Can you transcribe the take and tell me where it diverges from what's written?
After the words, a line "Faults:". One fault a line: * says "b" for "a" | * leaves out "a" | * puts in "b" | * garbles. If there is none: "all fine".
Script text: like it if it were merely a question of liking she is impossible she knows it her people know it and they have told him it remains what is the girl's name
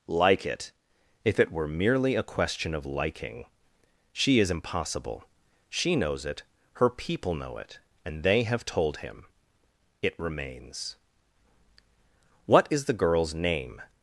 like it if it were merely a question of liking she is impossible she knows it her people know it and they have told him it remains what is the girl's name
Faults:
all fine